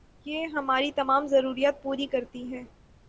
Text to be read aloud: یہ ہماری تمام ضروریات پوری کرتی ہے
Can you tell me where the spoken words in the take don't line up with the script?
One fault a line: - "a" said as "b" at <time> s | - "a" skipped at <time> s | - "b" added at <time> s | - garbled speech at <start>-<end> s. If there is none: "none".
none